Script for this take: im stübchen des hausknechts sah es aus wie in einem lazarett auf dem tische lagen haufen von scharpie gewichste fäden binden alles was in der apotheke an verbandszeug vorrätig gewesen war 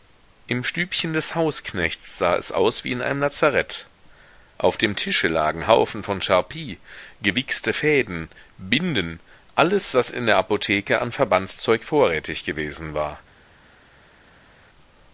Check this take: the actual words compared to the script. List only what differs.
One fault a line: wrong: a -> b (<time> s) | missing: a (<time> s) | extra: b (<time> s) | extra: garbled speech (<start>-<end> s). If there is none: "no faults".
no faults